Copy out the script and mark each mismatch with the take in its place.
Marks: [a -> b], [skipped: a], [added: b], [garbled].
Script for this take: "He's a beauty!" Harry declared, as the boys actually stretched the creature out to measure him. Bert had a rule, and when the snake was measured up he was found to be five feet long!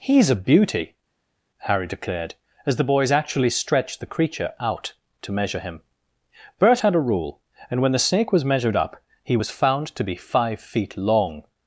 "He's a beauty!" Harry declared, as the boys actually stretched the creature out to measure him. Bert had a rule, and when the snake was measured up he was found to be five feet long!